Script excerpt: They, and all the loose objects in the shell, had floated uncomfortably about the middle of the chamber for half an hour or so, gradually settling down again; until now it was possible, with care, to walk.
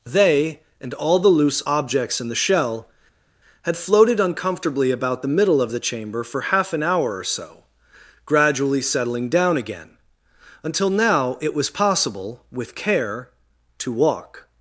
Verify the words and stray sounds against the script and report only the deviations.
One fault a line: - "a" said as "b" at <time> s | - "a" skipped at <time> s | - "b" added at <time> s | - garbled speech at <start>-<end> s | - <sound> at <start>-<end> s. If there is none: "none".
none